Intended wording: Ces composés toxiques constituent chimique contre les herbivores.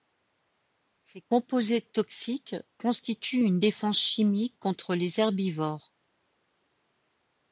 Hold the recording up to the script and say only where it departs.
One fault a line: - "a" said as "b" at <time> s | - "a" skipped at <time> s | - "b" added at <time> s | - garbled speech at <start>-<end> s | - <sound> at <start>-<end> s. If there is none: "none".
- "une défense" added at 3.4 s